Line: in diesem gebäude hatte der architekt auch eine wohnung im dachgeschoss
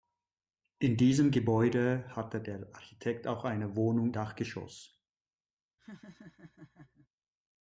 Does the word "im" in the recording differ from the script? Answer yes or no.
yes